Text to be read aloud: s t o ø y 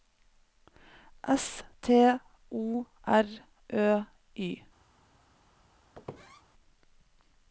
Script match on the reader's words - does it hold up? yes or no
no